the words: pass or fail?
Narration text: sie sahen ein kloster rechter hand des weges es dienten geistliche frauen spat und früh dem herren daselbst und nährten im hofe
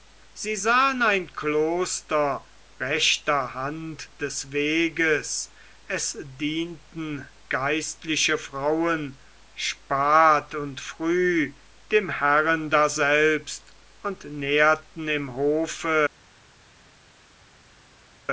pass